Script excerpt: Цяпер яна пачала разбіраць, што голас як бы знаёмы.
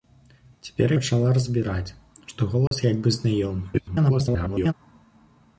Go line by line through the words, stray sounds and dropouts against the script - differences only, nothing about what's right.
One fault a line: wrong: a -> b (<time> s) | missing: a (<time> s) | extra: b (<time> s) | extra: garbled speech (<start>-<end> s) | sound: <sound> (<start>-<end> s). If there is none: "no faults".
missing: яна (0.9 s)
sound: dropout (2.7-2.7 s)
extra: garbled speech (3.7-4.7 s)